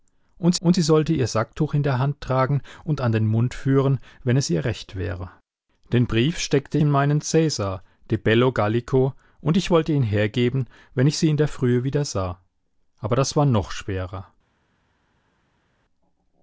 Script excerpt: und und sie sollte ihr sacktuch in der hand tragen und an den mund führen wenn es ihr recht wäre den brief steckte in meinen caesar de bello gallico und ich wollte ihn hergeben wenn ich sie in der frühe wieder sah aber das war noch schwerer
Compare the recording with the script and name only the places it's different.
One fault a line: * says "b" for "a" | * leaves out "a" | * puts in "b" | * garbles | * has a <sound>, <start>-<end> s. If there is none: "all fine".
all fine